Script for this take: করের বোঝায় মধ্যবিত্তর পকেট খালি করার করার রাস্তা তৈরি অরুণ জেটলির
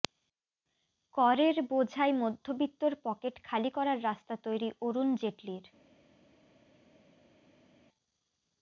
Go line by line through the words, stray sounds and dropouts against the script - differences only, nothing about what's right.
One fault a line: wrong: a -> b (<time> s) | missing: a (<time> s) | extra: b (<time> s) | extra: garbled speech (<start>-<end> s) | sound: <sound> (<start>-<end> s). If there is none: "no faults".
missing: করার (4.0 s)